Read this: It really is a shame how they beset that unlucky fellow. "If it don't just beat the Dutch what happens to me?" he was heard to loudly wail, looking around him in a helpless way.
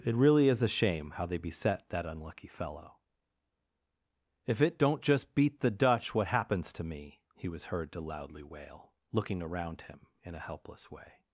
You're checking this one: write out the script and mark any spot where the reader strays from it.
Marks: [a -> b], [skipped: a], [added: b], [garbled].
It really is a shame how they beset that unlucky fellow. "If it don't just beat the Dutch what happens to me?" he was heard to loudly wail, looking around him in a helpless way.